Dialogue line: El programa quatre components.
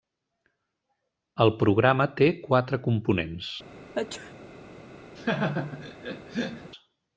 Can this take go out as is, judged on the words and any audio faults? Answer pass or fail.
fail